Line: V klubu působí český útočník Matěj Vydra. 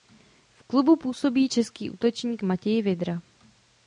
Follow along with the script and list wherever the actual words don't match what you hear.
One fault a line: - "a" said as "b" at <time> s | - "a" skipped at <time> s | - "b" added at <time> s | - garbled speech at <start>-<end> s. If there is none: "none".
none